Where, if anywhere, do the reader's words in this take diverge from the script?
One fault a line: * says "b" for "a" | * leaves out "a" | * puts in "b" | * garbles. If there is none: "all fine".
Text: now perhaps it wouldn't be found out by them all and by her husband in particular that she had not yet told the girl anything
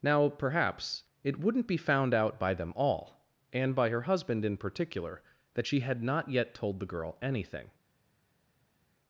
all fine